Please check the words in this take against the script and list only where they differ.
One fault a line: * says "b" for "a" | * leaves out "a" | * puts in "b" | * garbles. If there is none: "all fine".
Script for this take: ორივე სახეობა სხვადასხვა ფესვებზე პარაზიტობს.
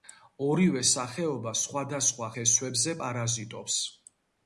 all fine